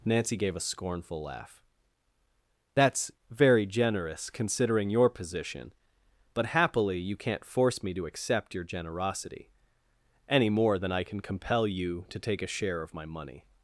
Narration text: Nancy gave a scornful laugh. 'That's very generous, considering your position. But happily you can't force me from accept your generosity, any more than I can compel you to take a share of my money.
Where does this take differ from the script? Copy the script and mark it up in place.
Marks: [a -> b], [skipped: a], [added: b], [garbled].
Nancy gave a scornful laugh. 'That's very generous, considering your position. But happily you can't force me [from -> to] accept your generosity, any more than I can compel you to take a share of my money.